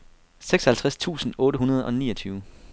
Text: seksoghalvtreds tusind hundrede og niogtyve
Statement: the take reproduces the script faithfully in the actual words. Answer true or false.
false